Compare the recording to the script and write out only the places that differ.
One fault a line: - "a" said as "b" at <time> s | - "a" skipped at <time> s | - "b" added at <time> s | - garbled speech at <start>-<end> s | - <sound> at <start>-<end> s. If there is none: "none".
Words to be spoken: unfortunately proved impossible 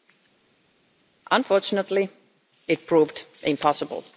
- "it" added at 2.7 s